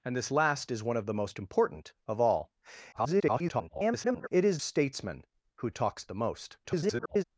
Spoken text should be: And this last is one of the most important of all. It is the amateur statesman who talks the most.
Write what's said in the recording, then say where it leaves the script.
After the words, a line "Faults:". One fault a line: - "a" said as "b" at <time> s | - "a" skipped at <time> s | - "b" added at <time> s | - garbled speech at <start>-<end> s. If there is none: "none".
And this last is one of the most important of all. [garbled] It is statesman who talks the most. [garbled]
Faults:
- garbled speech at 2.9-4.3 s
- "the amateur" skipped at 4.6 s
- garbled speech at 6.6-7.2 s